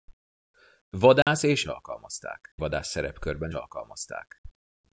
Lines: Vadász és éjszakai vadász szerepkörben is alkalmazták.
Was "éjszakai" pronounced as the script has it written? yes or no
no